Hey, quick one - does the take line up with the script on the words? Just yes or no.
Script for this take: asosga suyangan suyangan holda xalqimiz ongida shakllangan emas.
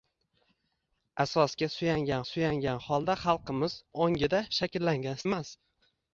yes